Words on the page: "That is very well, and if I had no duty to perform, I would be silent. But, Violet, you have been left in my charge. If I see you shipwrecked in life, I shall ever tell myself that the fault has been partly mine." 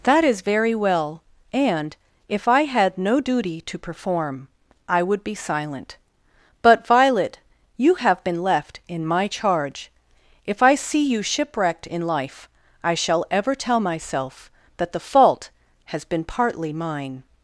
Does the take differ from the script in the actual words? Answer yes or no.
no